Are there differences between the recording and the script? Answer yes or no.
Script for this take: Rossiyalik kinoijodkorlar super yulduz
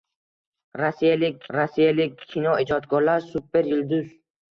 yes